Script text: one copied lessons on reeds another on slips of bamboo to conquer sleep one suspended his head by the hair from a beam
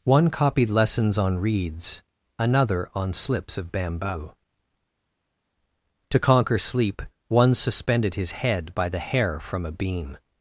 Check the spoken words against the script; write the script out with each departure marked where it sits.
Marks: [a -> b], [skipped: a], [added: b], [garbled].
one copied lessons on reeds another on slips of bamboo to conquer sleep one suspended his head by the hair from a beam